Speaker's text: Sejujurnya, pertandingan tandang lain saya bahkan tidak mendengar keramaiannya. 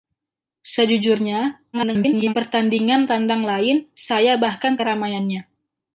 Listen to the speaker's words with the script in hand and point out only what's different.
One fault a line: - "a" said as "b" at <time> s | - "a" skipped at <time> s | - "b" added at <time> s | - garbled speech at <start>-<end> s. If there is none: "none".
- garbled speech at 1.7-2.3 s
- "tidak mendengar" skipped at 4.8 s